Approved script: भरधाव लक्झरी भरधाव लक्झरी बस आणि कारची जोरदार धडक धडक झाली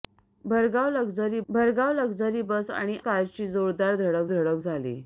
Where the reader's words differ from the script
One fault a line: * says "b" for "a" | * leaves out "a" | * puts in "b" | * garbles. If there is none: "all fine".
all fine